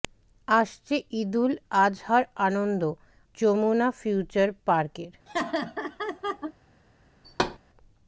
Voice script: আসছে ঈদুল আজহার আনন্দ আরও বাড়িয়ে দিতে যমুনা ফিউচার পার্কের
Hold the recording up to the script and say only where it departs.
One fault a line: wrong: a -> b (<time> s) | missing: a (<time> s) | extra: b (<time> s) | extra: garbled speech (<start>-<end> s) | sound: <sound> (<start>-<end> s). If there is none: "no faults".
missing: আরও বাড়িয়ে দিতে (2.8 s)
sound: laugh (5.3-6.5 s)
sound: thud (7.2-7.6 s)